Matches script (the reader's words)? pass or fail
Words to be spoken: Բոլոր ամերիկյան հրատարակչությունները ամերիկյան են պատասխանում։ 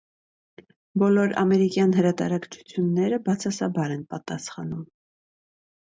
fail